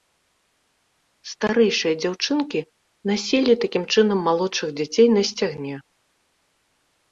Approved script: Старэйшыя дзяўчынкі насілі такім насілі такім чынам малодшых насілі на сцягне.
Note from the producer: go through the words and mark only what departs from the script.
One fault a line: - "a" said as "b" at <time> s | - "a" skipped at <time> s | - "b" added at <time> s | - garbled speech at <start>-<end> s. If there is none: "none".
- "насілі такім" skipped at 3.8 s
- "насілі" said as "дзяцей" at 4.8 s